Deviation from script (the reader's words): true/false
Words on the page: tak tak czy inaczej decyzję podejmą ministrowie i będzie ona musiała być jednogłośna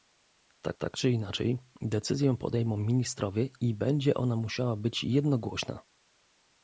false